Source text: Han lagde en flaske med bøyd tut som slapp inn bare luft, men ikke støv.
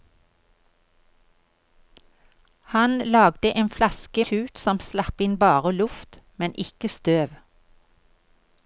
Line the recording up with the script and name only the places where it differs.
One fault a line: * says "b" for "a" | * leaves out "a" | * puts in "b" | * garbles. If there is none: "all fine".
* leaves out "med bøyd"